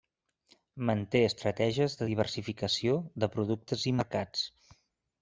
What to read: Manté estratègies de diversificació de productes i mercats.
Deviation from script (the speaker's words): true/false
false